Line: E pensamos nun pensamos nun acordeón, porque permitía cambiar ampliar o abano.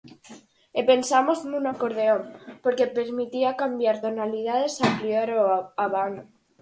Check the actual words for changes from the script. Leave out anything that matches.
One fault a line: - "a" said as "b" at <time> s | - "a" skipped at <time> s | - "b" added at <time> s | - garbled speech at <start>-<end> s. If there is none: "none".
- "pensamos nun" skipped at 1.6 s
- "tonalidades" added at 4.0 s